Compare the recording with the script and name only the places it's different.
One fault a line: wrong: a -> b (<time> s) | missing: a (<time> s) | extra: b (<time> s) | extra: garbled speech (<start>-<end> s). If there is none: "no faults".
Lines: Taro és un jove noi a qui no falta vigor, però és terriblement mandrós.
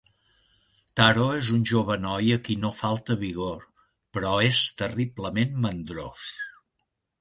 no faults